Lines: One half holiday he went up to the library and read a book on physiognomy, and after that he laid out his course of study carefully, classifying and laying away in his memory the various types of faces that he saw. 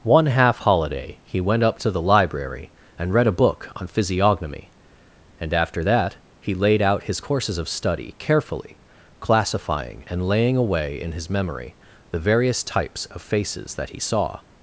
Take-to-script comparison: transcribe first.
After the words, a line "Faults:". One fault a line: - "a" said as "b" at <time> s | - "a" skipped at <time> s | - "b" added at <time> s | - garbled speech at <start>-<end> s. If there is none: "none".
One half holiday he went up to the library and read a book on physiognomy, and after that he laid out his courses of study carefully, classifying and laying away in his memory the various types of faces that he saw.
Faults:
- "course" said as "courses" at 7.2 s